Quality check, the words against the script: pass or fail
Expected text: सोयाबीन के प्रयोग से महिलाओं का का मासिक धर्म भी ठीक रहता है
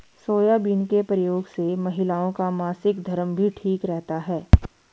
fail